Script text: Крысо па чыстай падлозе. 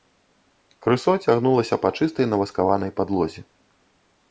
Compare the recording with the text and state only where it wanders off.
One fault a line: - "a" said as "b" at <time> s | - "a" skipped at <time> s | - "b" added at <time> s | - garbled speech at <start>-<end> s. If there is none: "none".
- "цягнулася" added at 1.2 s
- "наваскаванай" added at 2.3 s